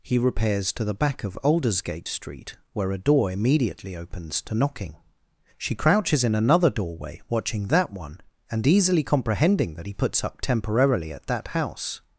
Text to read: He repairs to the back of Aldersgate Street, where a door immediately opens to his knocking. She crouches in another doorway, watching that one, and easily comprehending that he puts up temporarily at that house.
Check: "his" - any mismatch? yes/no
yes